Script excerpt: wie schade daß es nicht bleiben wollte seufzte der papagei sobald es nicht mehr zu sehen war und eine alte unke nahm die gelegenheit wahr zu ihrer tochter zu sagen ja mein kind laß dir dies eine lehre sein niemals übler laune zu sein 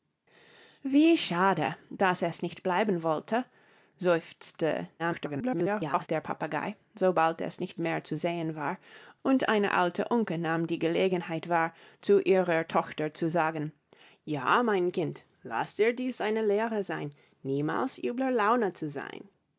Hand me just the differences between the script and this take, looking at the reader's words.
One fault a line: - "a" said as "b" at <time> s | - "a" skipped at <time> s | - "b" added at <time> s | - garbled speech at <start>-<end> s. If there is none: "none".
- garbled speech at 5.0-6.1 s